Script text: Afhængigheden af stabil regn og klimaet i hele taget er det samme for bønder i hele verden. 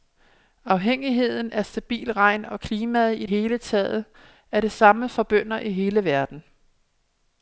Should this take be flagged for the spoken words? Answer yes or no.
no